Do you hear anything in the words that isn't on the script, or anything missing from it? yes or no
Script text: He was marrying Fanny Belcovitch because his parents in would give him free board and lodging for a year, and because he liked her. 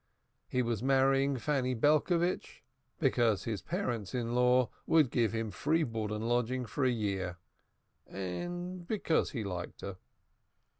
yes